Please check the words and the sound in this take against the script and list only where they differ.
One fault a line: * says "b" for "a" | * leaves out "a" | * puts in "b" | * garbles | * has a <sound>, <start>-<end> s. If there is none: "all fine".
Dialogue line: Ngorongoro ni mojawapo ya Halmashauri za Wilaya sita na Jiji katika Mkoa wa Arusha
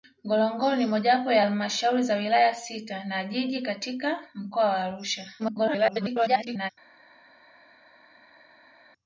* garbles